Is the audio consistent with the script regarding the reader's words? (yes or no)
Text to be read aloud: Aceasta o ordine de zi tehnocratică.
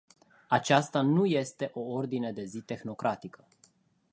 no